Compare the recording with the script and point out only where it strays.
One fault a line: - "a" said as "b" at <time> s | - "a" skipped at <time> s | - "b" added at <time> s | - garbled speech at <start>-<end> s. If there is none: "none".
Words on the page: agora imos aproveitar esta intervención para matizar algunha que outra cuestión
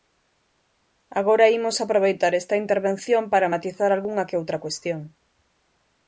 none